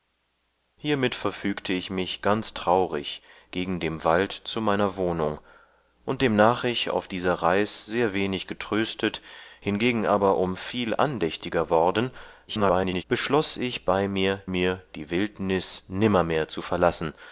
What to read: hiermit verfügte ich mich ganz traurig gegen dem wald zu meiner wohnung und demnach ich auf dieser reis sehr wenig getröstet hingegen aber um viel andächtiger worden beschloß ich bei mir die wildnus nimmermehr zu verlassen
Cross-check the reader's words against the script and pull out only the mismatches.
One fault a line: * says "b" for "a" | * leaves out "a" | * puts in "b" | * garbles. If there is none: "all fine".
* garbles
* puts in "mir"